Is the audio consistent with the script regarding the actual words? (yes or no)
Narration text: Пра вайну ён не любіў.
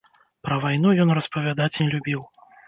no